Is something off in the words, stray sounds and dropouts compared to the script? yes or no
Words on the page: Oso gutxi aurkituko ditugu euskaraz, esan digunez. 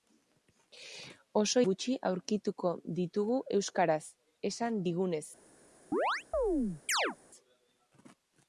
yes